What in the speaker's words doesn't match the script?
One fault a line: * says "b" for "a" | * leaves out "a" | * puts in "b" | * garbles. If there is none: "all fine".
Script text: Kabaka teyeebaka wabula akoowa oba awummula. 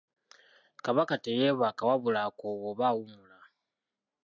all fine